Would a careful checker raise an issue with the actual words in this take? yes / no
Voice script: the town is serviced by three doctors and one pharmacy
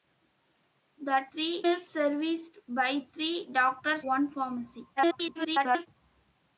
yes